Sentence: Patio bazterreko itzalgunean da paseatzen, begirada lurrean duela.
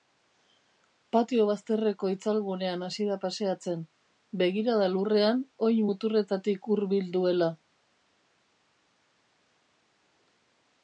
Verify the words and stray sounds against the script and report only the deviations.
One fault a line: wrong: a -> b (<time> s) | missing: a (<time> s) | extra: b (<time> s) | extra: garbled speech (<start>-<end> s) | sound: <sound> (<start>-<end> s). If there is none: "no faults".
extra: hasi (2.9 s)
extra: oin muturretatik hurbil (5.7 s)